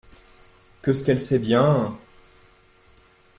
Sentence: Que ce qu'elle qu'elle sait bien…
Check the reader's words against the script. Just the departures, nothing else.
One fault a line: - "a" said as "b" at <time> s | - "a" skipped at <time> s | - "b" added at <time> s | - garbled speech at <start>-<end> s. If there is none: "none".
- "qu'elle" skipped at 1.2 s